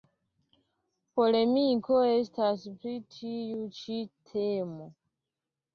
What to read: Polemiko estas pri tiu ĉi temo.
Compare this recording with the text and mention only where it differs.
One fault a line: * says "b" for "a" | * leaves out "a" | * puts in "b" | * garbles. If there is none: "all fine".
all fine